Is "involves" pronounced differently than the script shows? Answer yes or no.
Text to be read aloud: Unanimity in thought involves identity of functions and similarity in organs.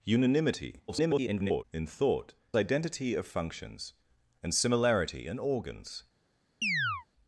yes